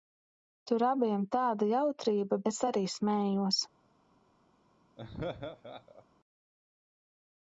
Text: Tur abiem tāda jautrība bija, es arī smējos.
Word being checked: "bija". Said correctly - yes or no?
no